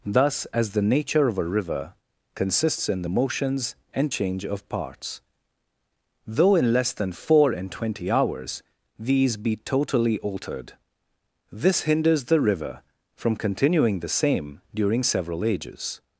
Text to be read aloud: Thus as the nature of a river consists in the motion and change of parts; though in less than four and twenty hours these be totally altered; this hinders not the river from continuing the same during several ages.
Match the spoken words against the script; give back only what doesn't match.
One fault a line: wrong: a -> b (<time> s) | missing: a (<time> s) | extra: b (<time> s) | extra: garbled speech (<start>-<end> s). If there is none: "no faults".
wrong: motion -> motions (3.1 s)
missing: not (12.2 s)